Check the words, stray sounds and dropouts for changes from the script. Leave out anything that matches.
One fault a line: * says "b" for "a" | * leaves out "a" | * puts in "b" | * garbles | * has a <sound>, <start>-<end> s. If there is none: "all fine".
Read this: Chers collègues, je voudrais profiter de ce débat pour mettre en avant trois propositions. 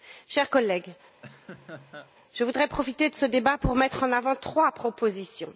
* has a laugh, 1.2-2.1 s